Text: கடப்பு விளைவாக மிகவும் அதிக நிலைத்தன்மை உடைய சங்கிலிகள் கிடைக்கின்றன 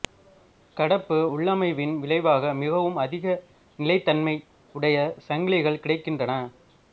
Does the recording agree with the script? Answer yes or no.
no